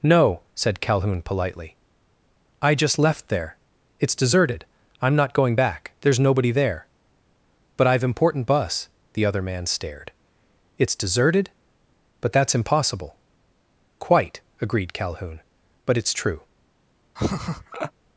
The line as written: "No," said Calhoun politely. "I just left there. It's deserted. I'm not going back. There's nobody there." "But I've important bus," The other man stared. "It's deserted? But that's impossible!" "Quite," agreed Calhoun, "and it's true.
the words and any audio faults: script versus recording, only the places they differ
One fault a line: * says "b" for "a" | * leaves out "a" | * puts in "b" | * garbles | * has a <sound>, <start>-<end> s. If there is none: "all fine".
* says "but" for "and"
* has a laugh, 17.2-17.9 s